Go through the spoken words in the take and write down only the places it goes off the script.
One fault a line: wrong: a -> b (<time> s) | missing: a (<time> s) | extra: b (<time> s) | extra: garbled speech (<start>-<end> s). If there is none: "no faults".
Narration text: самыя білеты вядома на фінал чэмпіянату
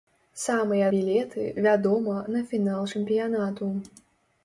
no faults